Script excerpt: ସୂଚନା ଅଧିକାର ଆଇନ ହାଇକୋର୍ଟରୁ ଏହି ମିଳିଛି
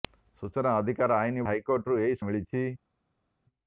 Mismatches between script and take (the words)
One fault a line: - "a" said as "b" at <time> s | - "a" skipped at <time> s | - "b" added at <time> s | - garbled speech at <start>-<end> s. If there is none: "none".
none